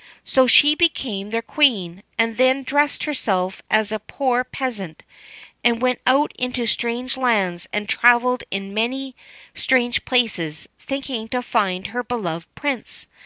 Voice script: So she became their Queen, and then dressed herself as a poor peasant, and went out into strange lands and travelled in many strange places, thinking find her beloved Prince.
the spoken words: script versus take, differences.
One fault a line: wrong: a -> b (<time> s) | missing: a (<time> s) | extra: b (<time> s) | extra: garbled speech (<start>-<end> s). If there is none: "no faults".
extra: to (11.3 s)